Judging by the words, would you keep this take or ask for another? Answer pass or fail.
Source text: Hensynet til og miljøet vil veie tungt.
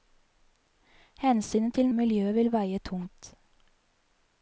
pass